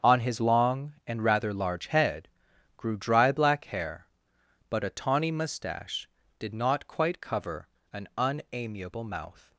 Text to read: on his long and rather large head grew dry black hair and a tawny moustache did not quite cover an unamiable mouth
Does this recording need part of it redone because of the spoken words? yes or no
yes